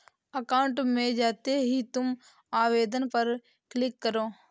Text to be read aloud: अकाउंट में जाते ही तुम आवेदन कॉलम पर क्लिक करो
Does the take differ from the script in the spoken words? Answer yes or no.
yes